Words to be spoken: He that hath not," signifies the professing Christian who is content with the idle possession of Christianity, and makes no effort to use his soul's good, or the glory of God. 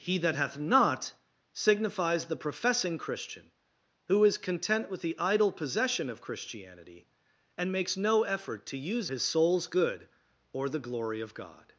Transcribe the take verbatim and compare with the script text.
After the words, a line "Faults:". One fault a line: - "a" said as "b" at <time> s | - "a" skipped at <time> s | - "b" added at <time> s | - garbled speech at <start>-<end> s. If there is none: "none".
He that hath not," signifies the professing Christian who is content with the idle possession of Christianity, and makes no effort to use his soul's good, or the glory of God.
Faults:
none